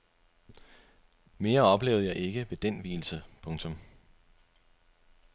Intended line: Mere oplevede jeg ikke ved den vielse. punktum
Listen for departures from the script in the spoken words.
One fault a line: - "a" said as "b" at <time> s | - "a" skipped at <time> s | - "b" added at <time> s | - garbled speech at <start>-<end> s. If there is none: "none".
none